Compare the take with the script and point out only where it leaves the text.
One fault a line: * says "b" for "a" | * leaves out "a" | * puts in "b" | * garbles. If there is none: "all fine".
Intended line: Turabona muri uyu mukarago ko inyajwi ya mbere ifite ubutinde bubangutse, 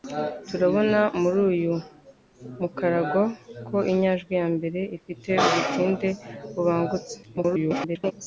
* garbles